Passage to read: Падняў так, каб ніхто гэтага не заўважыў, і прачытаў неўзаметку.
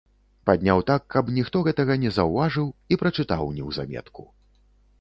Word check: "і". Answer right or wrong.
right